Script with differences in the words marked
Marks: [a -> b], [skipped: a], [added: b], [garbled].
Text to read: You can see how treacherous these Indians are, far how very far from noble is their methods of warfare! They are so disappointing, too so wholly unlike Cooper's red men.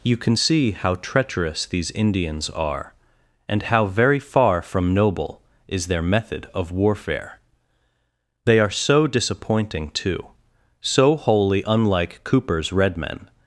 You can see how treacherous these Indians are, [far -> and] how very far from noble is their [methods -> method] of warfare! They are so disappointing, too so wholly unlike Cooper's red men.